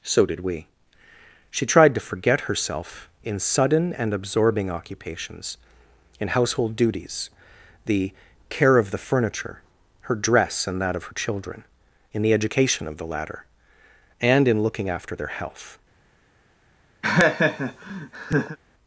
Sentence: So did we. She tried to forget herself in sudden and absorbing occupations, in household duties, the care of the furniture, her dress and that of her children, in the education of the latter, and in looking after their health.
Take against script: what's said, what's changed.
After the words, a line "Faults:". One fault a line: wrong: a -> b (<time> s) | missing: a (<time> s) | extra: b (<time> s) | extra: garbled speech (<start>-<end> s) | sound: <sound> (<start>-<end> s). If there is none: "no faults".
So did we. She tried to forget herself in sudden and absorbing occupations, in household duties, the care of the furniture, her dress and that of her children, in the education of the latter, and in looking after their health.
Faults:
sound: laugh (17.0-18.6 s)